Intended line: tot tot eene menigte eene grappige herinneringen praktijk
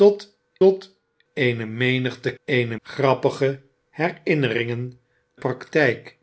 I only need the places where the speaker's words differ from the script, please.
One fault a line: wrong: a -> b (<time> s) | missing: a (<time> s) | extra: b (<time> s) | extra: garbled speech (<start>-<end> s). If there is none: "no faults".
no faults